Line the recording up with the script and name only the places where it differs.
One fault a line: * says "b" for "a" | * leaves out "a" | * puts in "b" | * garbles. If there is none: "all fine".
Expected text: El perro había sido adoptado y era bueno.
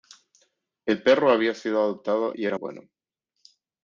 all fine